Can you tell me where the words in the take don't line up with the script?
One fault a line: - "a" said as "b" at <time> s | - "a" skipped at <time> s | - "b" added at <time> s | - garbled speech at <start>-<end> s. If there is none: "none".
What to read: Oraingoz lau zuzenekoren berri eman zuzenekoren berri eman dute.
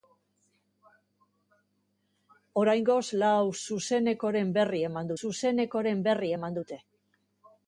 none